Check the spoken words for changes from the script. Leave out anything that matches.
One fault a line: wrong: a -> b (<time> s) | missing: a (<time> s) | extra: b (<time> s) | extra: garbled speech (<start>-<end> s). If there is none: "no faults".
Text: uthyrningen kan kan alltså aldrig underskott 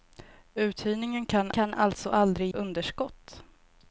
no faults